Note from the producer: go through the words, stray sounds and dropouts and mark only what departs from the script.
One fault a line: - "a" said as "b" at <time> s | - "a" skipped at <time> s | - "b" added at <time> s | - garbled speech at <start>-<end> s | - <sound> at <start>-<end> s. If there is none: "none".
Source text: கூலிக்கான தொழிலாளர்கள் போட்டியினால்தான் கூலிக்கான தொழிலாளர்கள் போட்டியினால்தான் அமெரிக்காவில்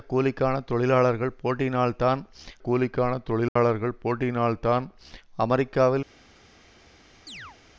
- dropout at 3.5-3.6 s
- chirp at 7.3-7.6 s